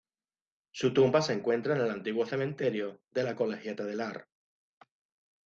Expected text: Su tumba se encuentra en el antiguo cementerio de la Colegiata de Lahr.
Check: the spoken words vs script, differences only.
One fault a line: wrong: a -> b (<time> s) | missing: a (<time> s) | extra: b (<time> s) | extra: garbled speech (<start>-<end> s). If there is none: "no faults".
no faults